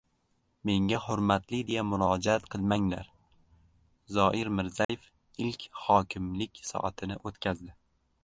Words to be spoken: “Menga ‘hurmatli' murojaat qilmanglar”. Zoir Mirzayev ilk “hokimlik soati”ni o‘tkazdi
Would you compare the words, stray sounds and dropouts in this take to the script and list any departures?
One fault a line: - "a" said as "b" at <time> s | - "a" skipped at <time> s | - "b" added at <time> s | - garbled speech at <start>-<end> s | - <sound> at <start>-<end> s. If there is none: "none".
- "deya" added at 1.7 s
- dropout at 4.8-4.9 s